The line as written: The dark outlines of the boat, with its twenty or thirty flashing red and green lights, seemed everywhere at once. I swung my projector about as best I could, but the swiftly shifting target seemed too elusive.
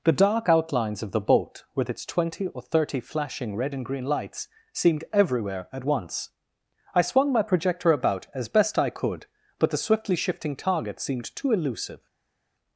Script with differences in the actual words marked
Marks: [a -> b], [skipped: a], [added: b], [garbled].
The dark outlines of the boat, with its twenty or thirty flashing red and green lights, seemed everywhere at once. I swung my projector about as best I could, but the swiftly shifting target seemed too elusive.